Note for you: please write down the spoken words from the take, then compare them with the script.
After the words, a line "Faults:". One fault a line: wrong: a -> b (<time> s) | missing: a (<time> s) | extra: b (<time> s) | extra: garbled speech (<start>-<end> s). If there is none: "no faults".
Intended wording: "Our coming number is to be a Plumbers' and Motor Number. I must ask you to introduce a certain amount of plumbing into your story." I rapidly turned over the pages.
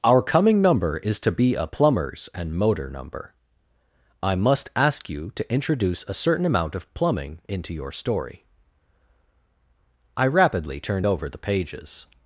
"Our coming number is to be a Plumbers' and Motor Number. I must ask you to introduce a certain amount of plumbing into your story." I rapidly turned over the pages.
Faults:
no faults